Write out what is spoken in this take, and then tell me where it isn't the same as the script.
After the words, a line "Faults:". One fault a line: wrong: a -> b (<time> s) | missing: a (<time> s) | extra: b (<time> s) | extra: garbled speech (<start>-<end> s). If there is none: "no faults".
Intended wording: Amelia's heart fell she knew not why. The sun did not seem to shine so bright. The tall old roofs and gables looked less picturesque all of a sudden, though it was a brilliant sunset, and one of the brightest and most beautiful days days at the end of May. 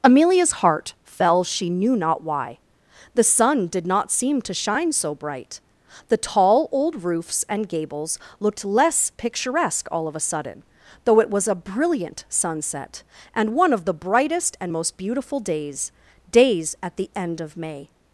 Amelia's heart fell she knew not why. The sun did not seem to shine so bright. The tall old roofs and gables looked less picturesque all of a sudden, though it was a brilliant sunset, and one of the brightest and most beautiful days days at the end of May.
Faults:
no faults